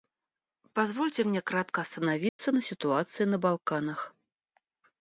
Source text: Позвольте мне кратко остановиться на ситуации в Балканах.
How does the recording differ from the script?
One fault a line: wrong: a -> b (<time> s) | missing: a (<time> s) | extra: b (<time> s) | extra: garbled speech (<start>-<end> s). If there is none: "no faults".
wrong: в -> на (3.3 s)